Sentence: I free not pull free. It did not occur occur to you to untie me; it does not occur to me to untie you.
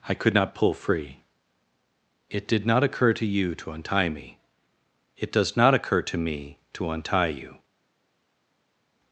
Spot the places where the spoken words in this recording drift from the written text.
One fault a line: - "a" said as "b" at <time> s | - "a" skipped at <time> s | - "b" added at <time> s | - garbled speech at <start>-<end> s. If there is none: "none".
- "free" said as "could" at 0.1 s
- "occur" skipped at 3.1 s